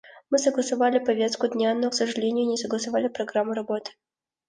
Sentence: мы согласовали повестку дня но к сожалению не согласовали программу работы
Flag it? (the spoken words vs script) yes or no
no